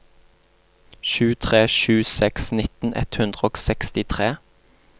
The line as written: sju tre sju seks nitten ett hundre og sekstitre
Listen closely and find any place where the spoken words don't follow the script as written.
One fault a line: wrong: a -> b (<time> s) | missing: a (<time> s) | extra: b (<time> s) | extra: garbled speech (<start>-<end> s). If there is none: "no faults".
no faults